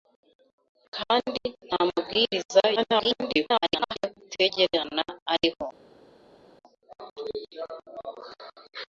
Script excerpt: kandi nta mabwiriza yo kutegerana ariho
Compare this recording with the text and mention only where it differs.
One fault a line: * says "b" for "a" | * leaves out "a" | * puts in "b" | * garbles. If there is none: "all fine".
* garbles